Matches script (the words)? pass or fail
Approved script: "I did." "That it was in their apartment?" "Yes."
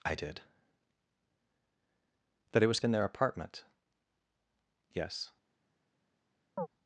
pass